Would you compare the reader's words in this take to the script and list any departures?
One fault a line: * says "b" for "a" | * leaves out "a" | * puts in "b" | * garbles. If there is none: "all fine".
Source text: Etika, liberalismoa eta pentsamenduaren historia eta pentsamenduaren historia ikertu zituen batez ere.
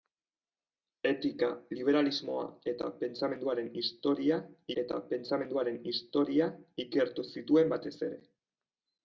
all fine